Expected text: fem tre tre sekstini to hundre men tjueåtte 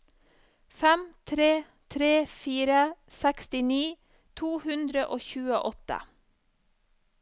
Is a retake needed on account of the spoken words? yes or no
yes